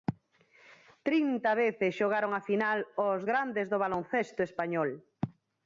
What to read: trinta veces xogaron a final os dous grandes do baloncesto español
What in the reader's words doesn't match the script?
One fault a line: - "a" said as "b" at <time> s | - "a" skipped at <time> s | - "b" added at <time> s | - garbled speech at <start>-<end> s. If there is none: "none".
- "dous" skipped at 3.2 s